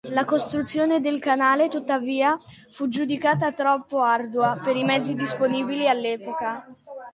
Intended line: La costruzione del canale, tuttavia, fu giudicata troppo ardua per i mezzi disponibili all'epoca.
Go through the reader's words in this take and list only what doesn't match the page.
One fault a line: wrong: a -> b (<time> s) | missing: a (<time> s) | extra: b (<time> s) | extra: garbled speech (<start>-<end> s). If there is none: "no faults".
no faults